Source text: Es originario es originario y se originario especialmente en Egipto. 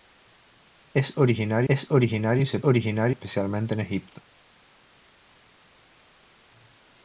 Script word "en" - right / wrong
right